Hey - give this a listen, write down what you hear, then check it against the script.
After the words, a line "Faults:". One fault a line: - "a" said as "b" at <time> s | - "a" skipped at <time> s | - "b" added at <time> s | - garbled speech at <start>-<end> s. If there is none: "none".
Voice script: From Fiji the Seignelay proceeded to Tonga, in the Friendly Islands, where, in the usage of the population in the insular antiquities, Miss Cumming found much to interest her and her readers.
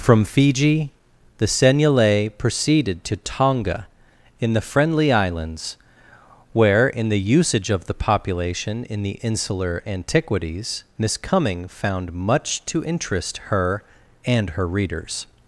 From Fiji the Seignelay proceeded to Tonga, in the Friendly Islands, where, in the usage of the population in the insular antiquities, Miss Cumming found much to interest her and her readers.
Faults:
none